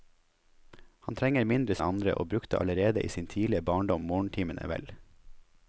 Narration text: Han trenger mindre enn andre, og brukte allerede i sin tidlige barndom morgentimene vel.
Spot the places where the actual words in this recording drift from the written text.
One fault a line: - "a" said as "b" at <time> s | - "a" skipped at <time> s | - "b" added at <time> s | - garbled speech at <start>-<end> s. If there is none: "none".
none